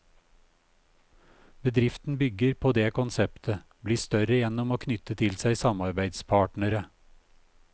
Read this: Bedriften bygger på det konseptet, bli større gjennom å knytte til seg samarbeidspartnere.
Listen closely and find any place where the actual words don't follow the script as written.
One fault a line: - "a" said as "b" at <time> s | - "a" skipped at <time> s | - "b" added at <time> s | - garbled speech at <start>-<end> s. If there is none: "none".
none